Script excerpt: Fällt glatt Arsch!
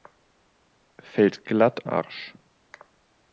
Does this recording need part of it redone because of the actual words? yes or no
no